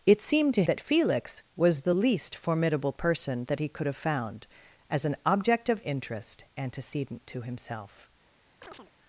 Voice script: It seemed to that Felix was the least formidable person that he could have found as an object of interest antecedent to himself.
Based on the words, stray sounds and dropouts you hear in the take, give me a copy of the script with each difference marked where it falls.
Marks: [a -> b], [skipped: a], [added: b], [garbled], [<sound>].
It seemed to that Felix was the least formidable person that he could have found as an object of interest antecedent to himself. [chirp]